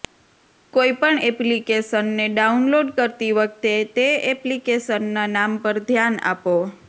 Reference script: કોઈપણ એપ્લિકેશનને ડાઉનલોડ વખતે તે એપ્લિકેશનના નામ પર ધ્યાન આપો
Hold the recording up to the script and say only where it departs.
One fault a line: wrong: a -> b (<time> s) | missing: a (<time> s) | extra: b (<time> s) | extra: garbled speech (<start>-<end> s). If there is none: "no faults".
extra: કરતી (3.0 s)